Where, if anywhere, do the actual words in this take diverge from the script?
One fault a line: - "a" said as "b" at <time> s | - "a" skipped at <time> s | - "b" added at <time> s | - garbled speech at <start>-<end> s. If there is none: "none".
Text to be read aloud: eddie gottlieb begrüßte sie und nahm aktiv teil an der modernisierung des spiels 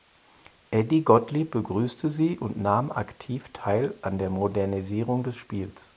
none